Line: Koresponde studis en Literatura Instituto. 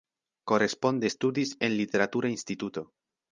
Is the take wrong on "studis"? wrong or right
right